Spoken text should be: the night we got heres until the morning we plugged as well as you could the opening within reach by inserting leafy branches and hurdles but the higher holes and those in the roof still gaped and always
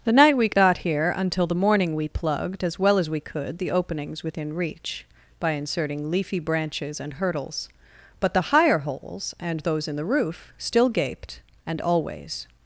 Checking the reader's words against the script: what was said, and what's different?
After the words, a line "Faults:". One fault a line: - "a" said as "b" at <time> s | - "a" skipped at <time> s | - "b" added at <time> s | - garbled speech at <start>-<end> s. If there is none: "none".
the night we got here until the morning we plugged as well as we could the openings within reach by inserting leafy branches and hurdles but the higher holes and those in the roof still gaped and always
Faults:
- "heres" said as "here" at 0.8 s
- "you" said as "we" at 3.1 s
- "opening" said as "openings" at 3.7 s